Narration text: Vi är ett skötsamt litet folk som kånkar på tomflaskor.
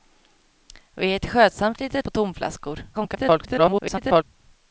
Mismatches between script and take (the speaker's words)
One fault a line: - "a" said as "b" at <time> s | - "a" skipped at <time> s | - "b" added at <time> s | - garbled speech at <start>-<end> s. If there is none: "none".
- "folk som kånkar" skipped at 2.0 s
- garbled speech at 2.9-4.2 s